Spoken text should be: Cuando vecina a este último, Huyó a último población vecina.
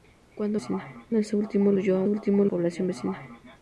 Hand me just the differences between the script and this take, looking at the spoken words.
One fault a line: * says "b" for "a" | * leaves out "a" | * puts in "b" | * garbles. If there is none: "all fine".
all fine